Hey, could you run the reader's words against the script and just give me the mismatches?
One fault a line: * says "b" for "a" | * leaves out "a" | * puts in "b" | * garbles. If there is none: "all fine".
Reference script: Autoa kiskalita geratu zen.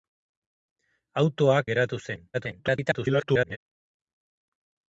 * leaves out "kiskalita"
* garbles